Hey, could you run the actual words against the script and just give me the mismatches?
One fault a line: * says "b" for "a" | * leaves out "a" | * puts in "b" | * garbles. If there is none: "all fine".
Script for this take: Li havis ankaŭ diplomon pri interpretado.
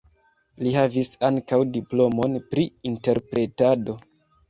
all fine